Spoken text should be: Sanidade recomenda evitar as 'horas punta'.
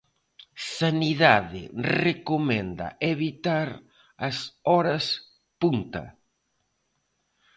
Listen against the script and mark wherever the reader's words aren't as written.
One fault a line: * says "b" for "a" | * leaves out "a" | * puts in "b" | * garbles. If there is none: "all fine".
all fine